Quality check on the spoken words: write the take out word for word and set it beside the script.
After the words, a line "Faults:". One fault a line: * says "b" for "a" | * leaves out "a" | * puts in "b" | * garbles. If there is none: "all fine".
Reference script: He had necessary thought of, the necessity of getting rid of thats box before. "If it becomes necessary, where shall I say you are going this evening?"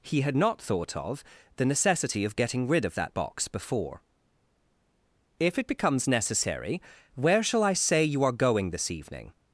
He had not thought of, the necessity of getting rid of that box before. "If it becomes necessary, where shall I say you are going this evening?"
Faults:
* says "not" for "necessary"
* says "that" for "thats"